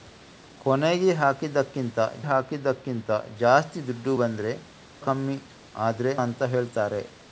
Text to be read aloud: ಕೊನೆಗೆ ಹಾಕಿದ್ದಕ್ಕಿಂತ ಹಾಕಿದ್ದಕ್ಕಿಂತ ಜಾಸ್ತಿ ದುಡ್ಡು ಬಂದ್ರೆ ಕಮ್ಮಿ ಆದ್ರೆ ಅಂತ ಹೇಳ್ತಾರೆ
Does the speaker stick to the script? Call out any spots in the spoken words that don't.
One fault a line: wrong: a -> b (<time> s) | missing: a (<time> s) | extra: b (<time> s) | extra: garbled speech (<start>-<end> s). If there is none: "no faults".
no faults